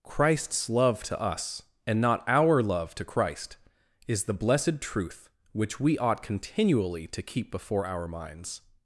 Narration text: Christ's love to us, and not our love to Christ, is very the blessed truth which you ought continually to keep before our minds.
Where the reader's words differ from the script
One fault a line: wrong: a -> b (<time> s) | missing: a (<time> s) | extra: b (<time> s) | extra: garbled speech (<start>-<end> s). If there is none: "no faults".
missing: very (4.2 s)
wrong: you -> we (5.8 s)